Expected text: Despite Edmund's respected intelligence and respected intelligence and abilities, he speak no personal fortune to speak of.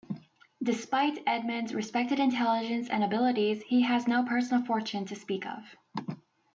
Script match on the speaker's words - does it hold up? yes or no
no